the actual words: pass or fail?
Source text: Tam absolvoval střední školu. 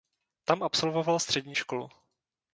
pass